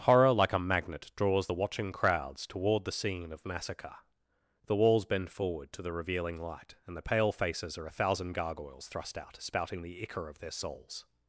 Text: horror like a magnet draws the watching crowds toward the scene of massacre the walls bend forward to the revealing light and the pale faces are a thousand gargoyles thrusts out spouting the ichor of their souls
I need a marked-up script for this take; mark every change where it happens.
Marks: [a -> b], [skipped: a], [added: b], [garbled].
horror like a magnet draws the watching crowds toward the scene of massacre the walls bend forward to the revealing light and the pale faces are a thousand gargoyles [thrusts -> thrust] out spouting the ichor of their souls